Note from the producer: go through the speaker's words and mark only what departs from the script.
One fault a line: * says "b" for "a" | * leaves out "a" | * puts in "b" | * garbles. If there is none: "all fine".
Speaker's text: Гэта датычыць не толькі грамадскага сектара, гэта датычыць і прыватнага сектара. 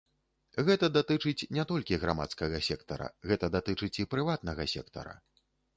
all fine